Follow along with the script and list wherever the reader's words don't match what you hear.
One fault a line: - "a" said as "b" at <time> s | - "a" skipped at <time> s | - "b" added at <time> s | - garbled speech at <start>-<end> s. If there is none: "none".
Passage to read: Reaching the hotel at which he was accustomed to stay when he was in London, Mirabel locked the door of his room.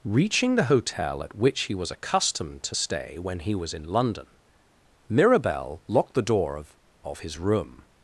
- "of" added at 7.0 s